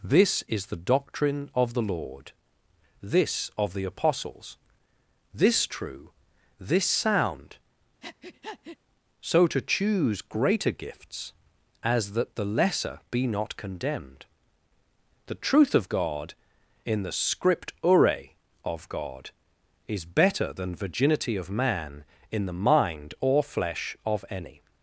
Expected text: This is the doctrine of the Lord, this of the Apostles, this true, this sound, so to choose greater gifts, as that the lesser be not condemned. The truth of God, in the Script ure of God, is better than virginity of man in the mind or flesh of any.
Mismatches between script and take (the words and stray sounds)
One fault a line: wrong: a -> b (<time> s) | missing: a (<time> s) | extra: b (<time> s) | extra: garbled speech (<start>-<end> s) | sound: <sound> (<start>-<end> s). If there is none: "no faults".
sound: breath (8.0-8.8 s)